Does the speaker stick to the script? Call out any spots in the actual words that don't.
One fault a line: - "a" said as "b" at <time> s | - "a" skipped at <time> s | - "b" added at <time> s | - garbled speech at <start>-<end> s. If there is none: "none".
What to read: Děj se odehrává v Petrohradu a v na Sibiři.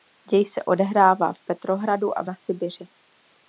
none